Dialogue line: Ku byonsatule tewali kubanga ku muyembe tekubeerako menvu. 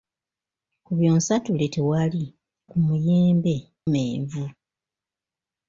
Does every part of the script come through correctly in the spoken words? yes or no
no